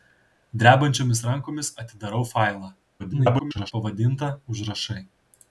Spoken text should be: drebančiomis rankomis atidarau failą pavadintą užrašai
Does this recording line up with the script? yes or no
no